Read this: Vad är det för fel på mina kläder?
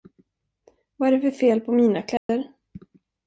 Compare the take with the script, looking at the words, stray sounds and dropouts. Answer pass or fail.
fail